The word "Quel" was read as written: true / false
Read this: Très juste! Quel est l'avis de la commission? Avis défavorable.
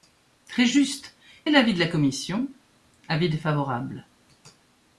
false